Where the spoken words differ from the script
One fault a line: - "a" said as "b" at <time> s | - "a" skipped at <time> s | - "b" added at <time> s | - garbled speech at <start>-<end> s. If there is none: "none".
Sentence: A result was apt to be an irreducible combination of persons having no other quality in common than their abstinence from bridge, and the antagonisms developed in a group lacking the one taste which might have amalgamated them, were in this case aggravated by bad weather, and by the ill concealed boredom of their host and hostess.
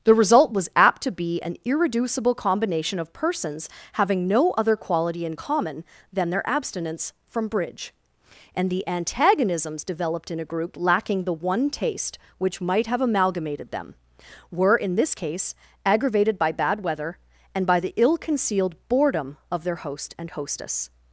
- "A" said as "The" at 0.0 s